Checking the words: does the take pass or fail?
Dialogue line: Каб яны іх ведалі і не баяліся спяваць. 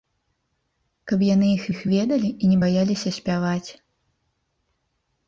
fail